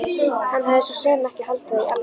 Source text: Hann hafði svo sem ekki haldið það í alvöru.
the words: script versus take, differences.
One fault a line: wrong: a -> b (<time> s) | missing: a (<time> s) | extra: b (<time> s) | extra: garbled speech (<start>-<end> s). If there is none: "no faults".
no faults